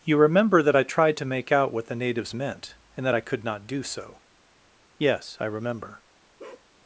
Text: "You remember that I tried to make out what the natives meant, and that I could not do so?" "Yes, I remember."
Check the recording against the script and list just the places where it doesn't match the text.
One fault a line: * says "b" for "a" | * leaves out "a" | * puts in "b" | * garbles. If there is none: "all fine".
all fine